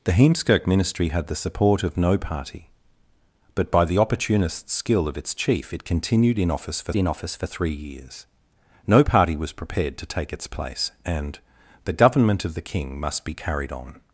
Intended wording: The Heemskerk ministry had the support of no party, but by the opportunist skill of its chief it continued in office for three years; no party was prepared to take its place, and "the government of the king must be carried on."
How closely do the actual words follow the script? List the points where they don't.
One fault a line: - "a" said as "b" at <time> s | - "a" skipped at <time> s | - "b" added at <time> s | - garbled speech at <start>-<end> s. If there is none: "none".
- "in office for" added at 7.0 s